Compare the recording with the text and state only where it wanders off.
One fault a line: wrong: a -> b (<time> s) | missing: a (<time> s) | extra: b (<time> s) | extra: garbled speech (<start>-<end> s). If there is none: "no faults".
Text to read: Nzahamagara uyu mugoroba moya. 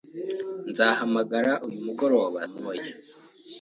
no faults